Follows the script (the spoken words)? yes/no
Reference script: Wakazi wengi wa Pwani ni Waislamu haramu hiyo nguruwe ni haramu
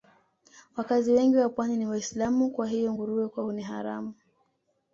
no